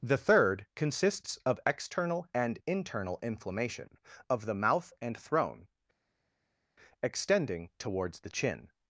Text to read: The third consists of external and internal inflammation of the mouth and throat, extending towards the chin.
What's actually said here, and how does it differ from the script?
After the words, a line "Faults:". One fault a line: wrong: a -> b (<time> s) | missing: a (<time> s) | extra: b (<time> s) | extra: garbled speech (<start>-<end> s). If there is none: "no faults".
The third consists of external and internal inflammation of the mouth and throne, extending towards the chin.
Faults:
wrong: throat -> throne (5.2 s)